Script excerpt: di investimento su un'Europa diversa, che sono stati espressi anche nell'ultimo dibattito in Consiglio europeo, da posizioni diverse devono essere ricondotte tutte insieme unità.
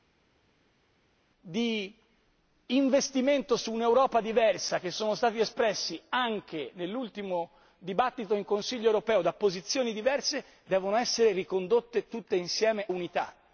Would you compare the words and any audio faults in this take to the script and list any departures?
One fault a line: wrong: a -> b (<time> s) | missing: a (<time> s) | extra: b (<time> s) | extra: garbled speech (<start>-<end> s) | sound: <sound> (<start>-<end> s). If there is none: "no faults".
no faults